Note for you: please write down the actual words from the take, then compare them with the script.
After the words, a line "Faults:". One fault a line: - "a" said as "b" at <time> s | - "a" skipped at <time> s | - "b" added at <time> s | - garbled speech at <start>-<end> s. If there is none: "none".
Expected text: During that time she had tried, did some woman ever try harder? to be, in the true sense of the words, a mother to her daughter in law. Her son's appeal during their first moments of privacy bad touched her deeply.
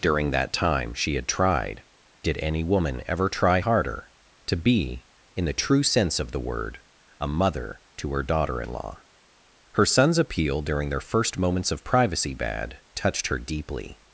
During that time she had tried, did any woman ever try harder? to be, in the true sense of the word, a mother to her daughter in law. Her son's appeal during their first moments of privacy bad touched her deeply.
Faults:
- "some" said as "any" at 2.4 s
- "words" said as "word" at 6.4 s